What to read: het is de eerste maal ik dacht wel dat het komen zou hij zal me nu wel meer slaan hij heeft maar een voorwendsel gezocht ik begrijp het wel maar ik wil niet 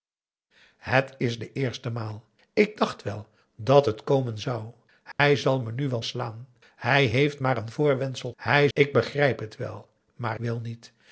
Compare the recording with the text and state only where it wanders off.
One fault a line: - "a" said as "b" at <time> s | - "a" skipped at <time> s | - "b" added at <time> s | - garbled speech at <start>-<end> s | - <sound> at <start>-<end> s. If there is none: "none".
- dropout at 5.1-5.2 s
- "meer" skipped at 6.0 s
- "gezocht" said as "hij" at 8.4 s
- "ik" skipped at 10.4 s